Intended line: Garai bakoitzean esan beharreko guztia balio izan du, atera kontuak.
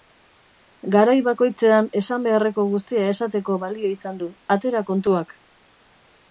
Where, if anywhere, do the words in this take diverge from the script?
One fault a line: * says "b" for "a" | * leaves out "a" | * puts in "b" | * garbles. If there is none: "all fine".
* puts in "esateko"